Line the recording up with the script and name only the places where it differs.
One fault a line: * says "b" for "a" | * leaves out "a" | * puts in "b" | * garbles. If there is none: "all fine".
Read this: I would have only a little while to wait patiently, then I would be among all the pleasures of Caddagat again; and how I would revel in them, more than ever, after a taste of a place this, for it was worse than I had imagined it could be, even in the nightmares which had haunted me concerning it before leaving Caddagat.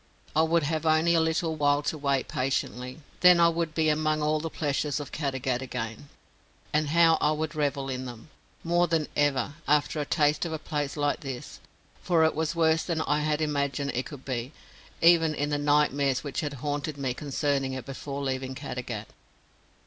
* puts in "like"